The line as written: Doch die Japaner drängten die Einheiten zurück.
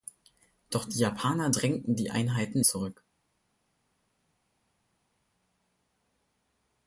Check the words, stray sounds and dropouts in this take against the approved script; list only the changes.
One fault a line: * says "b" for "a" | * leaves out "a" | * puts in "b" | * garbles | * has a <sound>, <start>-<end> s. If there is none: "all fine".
all fine